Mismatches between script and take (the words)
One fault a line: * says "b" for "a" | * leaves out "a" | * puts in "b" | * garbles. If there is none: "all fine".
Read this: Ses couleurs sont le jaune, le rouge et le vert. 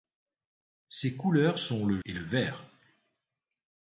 * leaves out "jaune le rouge"